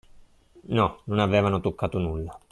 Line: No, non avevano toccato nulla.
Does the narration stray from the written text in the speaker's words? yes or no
no